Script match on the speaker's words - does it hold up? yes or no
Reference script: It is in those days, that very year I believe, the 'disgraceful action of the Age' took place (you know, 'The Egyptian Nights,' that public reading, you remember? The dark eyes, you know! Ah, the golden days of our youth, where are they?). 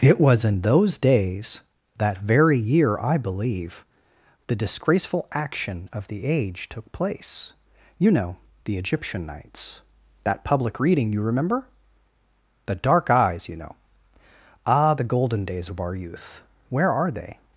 no